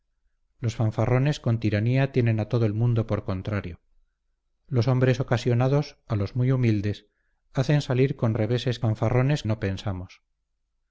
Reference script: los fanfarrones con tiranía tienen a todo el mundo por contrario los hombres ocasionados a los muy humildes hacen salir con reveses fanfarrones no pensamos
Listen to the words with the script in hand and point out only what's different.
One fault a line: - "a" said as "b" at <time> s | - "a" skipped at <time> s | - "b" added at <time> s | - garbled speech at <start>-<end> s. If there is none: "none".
none